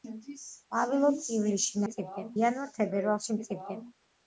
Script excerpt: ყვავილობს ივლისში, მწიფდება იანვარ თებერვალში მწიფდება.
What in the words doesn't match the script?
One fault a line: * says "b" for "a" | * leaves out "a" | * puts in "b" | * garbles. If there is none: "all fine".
all fine